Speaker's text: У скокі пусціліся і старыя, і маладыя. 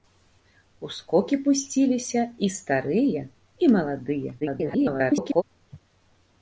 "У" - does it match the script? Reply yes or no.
yes